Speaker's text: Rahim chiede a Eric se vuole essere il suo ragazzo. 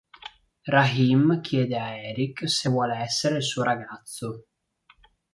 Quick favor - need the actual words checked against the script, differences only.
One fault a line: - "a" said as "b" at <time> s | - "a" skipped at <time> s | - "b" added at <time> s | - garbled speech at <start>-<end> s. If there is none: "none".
none